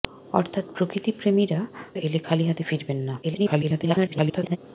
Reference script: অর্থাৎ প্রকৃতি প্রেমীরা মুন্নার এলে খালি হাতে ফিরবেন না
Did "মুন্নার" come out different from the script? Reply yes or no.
yes